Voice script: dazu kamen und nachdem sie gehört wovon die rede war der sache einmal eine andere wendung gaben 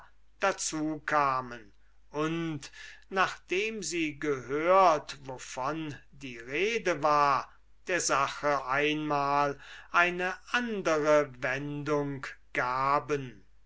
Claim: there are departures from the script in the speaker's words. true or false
false